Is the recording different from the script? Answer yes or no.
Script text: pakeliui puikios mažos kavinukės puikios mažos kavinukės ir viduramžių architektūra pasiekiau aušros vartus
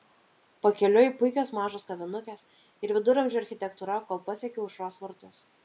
yes